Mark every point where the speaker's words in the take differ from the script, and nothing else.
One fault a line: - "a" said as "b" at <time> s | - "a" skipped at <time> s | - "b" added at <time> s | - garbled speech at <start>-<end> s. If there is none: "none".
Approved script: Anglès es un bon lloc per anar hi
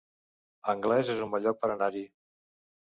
none